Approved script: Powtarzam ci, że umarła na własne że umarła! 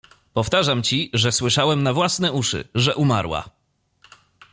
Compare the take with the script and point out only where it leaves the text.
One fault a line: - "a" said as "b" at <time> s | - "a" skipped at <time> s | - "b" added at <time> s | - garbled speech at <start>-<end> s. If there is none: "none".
- "umarła" said as "słyszałem" at 1.3 s
- "uszy" added at 2.3 s